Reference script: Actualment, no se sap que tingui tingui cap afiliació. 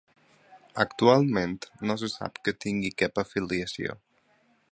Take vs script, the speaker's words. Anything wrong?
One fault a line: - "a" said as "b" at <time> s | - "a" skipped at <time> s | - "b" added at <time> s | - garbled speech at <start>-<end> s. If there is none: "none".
- "tingui" skipped at 2.9 s